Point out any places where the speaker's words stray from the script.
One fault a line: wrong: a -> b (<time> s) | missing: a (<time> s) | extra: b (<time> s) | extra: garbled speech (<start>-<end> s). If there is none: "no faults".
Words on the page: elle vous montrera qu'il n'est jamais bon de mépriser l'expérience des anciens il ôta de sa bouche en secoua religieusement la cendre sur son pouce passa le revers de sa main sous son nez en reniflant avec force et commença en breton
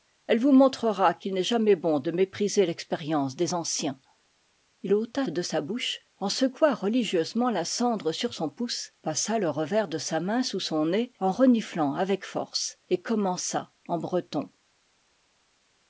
no faults